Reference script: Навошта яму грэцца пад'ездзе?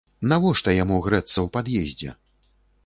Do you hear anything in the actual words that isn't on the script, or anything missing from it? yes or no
yes